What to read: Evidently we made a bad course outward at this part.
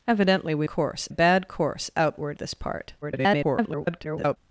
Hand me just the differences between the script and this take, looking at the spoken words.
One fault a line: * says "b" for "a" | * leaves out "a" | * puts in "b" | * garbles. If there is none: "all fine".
* says "course" for "made"
* leaves out "at"
* garbles